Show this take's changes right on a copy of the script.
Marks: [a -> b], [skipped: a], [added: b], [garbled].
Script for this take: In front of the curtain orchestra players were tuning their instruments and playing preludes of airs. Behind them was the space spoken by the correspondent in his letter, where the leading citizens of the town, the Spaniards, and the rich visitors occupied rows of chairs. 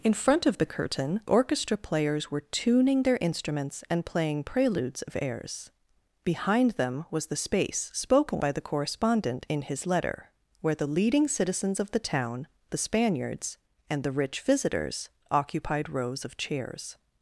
In front of the curtain orchestra players were tuning their instruments and playing preludes of airs. Behind them was the space spoken by the correspondent in his letter, where the leading citizens of the town, the Spaniards, and the rich visitors occupied rows of chairs.